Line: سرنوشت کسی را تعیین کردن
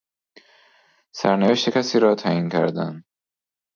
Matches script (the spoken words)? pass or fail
pass